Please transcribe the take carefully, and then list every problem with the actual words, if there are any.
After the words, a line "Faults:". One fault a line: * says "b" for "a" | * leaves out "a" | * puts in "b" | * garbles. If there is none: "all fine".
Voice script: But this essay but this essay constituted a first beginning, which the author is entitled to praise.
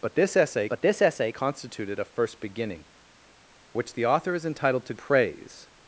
But this essay but this essay constituted a first beginning, which the author is entitled to praise.
Faults:
all fine